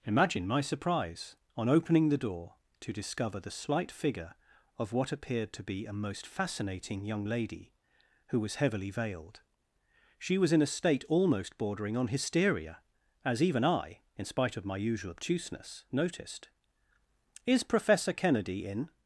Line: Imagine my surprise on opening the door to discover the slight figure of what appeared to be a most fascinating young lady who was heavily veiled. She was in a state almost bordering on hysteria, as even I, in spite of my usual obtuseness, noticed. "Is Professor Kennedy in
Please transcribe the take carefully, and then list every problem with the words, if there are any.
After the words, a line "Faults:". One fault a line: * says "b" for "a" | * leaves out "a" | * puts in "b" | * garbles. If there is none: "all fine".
Imagine my surprise on opening the door to discover the slight figure of what appeared to be a most fascinating young lady who was heavily veiled. She was in a state almost bordering on hysteria, as even I, in spite of my usual obtuseness, noticed. "Is Professor Kennedy in
Faults:
all fine